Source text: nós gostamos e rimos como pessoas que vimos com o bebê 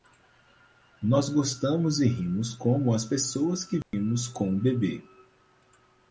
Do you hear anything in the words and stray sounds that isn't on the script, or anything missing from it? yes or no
yes